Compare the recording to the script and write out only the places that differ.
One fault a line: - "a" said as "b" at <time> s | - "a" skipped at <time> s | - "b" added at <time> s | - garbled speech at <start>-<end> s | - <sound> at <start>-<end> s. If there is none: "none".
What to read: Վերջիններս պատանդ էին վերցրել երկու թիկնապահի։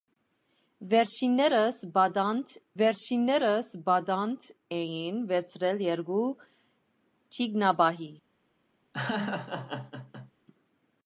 - "վերջիններս պատանդ" added at 2.8 s
- laugh at 8.9-10.3 s